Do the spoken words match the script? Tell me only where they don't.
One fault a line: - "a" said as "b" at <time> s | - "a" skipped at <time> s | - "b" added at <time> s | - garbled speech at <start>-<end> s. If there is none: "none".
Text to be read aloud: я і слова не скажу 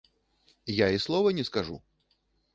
none